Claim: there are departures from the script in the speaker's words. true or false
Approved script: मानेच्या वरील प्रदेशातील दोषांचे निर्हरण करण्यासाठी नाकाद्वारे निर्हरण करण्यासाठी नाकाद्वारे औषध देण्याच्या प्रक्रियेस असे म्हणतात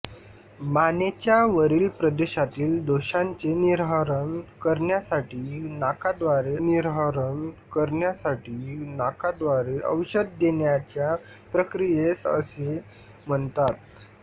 false